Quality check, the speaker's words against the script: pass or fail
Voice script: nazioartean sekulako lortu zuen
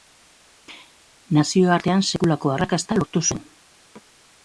fail